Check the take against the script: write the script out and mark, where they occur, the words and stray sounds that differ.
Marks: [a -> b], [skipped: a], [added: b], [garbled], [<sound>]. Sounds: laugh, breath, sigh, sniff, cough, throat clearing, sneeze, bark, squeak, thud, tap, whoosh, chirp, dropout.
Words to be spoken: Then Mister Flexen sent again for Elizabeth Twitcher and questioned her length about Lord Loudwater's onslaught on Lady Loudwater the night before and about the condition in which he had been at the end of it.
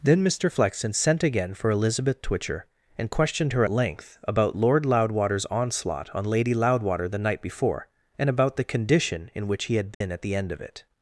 Then Mister Flexen sent again for Elizabeth Twitcher and questioned her length about Lord Loudwater's onslaught on Lady Loudwater the night before and about the condition in which he had been [dropout] at the end of it.